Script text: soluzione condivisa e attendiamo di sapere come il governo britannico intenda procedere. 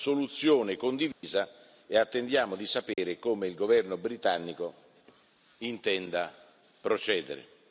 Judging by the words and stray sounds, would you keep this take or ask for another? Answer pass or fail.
fail